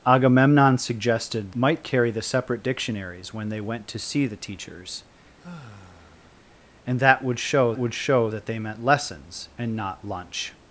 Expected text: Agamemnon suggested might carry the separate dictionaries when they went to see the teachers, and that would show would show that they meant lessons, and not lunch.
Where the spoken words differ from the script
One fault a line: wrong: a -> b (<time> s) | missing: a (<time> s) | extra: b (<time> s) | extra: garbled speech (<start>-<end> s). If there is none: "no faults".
no faults